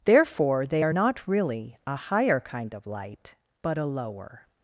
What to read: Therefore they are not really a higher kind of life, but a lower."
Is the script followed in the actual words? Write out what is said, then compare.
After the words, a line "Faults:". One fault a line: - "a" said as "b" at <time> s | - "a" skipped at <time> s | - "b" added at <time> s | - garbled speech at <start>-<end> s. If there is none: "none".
Therefore they are not really a higher kind of light, but a lower."
Faults:
- "life" said as "light" at 2.9 s